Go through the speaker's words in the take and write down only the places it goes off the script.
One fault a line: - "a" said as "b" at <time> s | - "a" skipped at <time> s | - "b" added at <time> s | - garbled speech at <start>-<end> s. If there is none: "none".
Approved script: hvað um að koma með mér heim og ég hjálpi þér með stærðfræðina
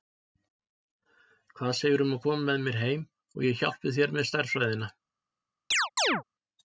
- "segirðu" added at 1.8 s